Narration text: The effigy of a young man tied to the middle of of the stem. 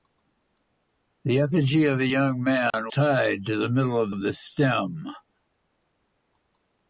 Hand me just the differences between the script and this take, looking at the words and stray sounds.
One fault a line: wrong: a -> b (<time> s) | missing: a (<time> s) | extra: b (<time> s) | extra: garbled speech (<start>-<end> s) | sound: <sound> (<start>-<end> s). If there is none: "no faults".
sound: dropout (2.7-2.7 s)